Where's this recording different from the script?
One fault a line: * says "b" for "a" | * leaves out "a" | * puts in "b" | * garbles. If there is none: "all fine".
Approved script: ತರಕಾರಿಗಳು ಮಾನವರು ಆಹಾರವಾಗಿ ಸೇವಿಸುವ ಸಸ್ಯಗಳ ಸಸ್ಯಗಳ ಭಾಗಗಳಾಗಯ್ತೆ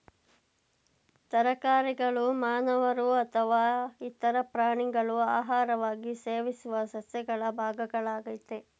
* puts in "ಅಥವಾ ಇತರ ಪ್ರಾಣಿಗಳು"
* leaves out "ಸಸ್ಯಗಳ"